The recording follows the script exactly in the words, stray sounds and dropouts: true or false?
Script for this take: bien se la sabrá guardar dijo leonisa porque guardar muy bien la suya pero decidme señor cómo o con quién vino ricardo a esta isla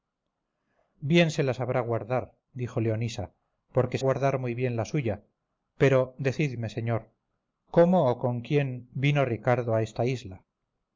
true